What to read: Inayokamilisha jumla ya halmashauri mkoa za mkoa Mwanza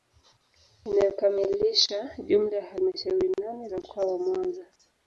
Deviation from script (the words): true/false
true